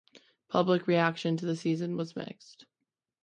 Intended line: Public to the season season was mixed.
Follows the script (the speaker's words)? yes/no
no